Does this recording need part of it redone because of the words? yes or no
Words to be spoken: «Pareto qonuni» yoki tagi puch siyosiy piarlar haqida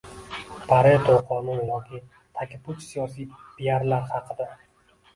no